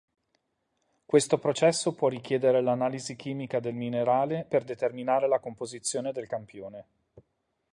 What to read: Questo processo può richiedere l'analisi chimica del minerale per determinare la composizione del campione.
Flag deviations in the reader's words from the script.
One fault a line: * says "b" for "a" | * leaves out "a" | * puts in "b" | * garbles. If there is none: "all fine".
all fine